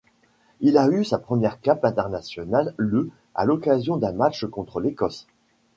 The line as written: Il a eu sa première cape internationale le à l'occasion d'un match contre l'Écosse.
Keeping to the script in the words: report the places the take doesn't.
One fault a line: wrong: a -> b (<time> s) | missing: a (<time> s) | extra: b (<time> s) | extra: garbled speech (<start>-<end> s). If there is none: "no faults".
no faults